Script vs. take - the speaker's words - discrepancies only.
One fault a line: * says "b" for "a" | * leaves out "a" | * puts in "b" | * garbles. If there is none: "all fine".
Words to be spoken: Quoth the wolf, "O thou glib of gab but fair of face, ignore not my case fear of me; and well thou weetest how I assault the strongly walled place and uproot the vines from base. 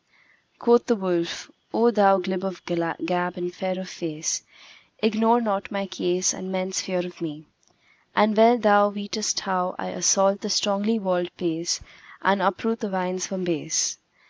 * says "and" for "but"
* puts in "and men's"